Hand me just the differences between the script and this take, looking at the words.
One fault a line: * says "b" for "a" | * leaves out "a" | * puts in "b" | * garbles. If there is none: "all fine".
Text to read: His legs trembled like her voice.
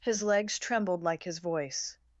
* says "his" for "her"